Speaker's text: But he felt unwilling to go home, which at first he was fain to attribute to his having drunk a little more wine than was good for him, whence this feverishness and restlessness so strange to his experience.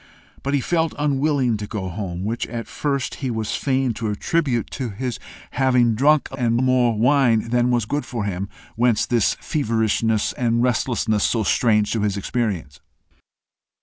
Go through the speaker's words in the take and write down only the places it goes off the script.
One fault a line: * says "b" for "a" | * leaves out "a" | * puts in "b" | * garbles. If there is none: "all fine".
* says "and" for "little"